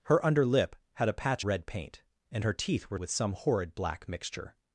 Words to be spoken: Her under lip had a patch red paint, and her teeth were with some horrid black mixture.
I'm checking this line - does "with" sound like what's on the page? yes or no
yes